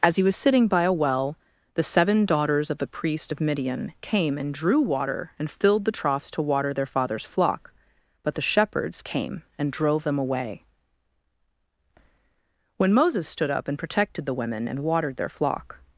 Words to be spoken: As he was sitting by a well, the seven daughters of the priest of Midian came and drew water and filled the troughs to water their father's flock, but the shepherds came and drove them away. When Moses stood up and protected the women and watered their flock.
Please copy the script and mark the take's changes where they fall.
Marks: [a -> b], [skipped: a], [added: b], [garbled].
As he was sitting by a well, the seven daughters of the priest of Midian came and drew water and filled the troughs to water their father's flock, but the shepherds came and drove them away. When Moses stood up and protected the women and watered their flock.